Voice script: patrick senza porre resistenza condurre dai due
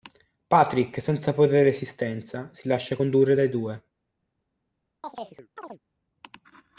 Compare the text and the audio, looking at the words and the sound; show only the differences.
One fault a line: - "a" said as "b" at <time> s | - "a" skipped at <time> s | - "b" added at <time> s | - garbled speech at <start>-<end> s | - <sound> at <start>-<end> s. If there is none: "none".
- "si lascia" added at 2.5 s
- chirp at 5.0-5.8 s